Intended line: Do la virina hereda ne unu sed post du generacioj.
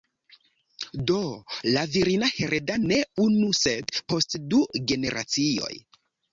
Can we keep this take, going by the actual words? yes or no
yes